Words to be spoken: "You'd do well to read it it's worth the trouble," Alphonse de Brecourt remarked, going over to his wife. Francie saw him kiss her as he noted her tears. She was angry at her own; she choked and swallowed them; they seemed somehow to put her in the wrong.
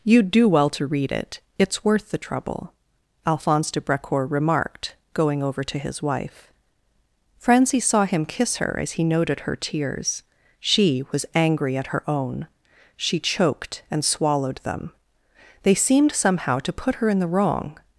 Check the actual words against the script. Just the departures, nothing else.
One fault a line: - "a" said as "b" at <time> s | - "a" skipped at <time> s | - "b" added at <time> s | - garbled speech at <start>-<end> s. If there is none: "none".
none